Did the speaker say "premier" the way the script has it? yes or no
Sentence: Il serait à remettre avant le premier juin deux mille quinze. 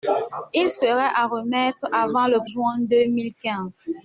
no